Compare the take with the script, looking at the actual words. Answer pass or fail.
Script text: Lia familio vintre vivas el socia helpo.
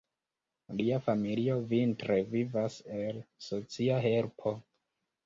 pass